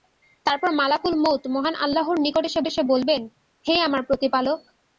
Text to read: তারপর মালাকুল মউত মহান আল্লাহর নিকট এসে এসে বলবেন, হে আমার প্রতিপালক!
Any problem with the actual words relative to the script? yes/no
no